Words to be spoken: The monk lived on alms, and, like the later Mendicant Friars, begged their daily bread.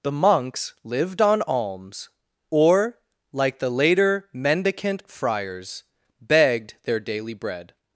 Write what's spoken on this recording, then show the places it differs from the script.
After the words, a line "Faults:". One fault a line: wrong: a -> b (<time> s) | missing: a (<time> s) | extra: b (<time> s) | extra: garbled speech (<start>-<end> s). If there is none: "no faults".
The monks lived on alms, or, like the later Mendicant Friars, begged their daily bread.
Faults:
wrong: monk -> monks (0.1 s)
wrong: and -> or (2.5 s)